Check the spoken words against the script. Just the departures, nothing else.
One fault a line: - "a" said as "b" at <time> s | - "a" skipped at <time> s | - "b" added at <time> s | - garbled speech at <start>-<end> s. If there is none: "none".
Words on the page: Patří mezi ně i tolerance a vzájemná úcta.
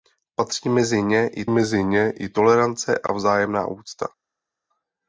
- "mezi ně i" added at 1.5 s